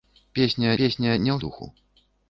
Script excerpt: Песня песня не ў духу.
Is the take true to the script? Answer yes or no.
yes